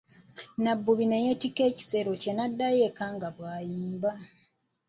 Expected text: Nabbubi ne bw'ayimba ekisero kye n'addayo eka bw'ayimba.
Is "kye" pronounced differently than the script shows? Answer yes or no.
no